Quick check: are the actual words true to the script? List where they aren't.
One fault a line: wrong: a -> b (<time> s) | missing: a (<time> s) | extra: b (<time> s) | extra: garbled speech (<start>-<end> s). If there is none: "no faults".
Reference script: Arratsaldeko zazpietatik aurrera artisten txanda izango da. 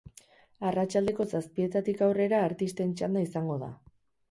no faults